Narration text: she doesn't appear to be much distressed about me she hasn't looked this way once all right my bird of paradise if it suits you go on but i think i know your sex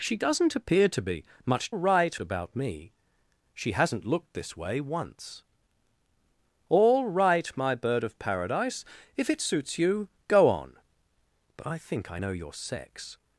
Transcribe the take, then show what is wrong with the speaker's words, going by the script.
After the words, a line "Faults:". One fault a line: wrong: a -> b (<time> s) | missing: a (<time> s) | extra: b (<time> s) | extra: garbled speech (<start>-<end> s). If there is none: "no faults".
she doesn't appear to be much right about me she hasn't looked this way once all right my bird of paradise if it suits you go on but i think i know your sex
Faults:
wrong: distressed -> right (1.7 s)